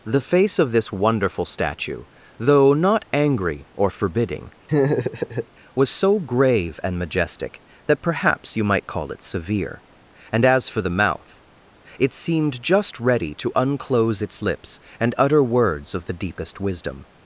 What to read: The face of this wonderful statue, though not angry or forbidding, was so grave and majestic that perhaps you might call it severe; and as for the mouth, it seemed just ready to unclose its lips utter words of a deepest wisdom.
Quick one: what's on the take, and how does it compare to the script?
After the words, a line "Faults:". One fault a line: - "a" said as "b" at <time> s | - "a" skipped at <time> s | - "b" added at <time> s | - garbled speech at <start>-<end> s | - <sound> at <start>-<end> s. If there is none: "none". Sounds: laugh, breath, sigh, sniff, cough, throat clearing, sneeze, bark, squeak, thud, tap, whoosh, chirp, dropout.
The face of this wonderful statue, though not angry or forbidding, was so grave and majestic that perhaps you might call it severe; and as for the mouth, it seemed just ready to unclose its lips and utter words of the deepest wisdom.
Faults:
- laugh at 4.7-5.5 s
- "and" added at 15.0 s
- "a" said as "the" at 16.1 s